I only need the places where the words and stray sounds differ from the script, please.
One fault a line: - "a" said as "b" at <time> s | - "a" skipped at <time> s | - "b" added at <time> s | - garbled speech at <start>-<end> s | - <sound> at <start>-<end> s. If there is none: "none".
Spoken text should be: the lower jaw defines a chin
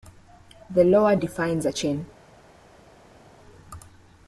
- "jaw" skipped at 1.1 s